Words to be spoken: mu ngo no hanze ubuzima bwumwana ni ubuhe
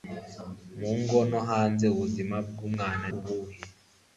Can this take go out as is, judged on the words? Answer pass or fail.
fail